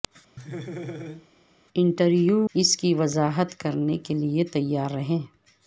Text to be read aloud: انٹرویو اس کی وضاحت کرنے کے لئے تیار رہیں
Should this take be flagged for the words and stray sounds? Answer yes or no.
yes